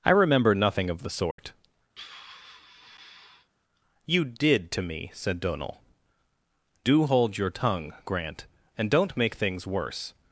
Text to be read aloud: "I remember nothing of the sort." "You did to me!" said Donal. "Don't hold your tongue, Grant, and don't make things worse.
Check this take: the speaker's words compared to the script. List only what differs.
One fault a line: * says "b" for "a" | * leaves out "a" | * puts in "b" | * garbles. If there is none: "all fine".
* says "Do" for "Don't"